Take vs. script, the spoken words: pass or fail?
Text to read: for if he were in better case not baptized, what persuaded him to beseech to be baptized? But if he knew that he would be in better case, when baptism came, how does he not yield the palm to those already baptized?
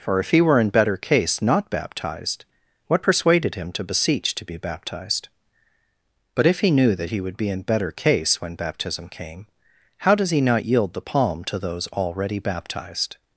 pass